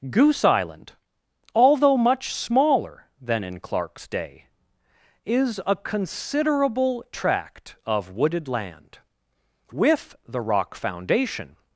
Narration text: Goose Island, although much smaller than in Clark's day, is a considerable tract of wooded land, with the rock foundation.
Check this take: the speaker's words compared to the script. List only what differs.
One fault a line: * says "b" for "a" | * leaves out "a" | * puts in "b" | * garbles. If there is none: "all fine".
all fine